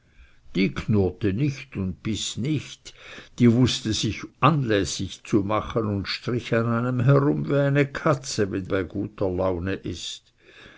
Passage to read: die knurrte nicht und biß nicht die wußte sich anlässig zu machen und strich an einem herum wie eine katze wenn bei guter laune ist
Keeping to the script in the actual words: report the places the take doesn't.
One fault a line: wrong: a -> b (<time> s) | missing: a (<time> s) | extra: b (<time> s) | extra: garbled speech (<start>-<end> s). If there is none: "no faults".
no faults